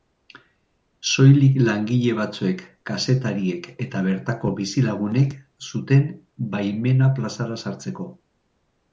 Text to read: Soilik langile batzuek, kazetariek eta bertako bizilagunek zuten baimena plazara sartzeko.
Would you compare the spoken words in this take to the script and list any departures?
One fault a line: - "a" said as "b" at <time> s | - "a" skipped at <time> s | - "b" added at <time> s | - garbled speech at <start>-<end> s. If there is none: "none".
none